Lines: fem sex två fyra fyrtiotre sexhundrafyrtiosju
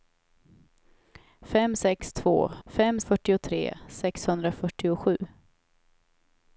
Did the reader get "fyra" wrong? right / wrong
wrong